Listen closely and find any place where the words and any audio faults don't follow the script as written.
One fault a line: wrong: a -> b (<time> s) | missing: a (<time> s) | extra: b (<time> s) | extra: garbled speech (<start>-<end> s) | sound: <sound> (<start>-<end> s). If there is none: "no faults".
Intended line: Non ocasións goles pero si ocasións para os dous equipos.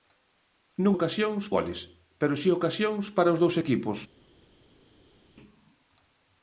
no faults